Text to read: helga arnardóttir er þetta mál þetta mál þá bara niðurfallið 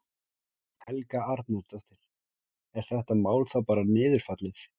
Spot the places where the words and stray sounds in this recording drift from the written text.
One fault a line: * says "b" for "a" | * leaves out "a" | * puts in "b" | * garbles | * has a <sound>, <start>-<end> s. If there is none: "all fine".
* leaves out "þetta mál"